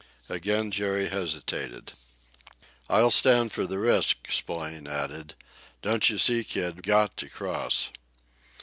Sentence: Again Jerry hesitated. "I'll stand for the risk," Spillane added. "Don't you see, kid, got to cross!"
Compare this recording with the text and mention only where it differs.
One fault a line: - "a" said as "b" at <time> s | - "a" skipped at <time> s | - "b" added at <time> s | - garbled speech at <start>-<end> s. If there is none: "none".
none